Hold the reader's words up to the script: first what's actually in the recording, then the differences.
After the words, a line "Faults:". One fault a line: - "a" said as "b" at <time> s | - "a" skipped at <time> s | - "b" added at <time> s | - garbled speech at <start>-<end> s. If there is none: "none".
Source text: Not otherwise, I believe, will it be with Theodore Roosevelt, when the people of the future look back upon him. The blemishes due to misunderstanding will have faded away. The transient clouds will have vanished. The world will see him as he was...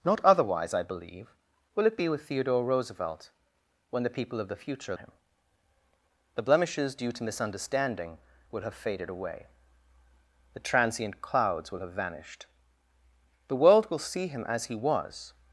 Not otherwise, I believe, will it be with Theodore Roosevelt, when the people of the future him. The blemishes due to misunderstanding will have faded away. The transient clouds will have vanished. The world will see him as he was...
Faults:
- "look back upon" skipped at 5.0 s